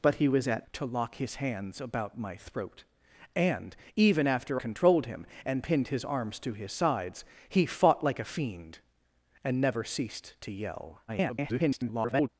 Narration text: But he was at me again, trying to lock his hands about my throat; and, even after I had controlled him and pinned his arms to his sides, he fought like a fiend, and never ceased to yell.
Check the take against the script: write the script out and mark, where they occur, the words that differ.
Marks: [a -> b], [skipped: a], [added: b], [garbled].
But he was at [skipped: me again, trying] to lock his hands about my throat; and, even after [skipped: I had] controlled him and pinned his arms to his sides, he fought like a fiend, and never ceased to yell. [garbled]